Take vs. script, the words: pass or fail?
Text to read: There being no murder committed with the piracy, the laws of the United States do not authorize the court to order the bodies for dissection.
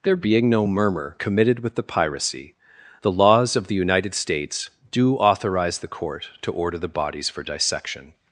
fail